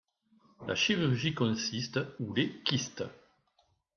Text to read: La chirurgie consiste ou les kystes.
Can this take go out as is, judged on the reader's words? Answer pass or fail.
pass